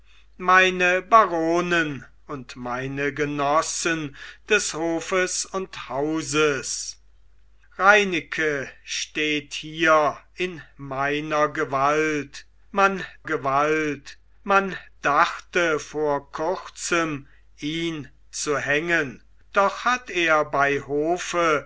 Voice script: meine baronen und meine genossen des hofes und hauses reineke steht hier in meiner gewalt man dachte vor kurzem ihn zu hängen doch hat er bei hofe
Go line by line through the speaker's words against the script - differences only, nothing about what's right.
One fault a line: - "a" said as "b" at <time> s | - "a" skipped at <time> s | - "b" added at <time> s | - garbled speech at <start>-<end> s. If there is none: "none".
- "gewalt man" added at 13.2 s